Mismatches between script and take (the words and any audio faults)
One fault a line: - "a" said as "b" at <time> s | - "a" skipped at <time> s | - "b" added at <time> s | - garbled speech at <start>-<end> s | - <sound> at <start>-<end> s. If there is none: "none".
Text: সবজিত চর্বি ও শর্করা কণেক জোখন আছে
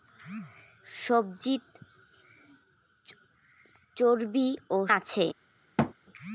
- "শর্করা কণেক জোখন" skipped at 4.8 s
- thud at 5.8-5.9 s